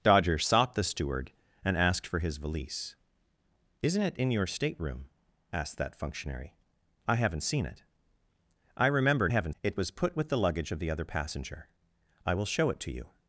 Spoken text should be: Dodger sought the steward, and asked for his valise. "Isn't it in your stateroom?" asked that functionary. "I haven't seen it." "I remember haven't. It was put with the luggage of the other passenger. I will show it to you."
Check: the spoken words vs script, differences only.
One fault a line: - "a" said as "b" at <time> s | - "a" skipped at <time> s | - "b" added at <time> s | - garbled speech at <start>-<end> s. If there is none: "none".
none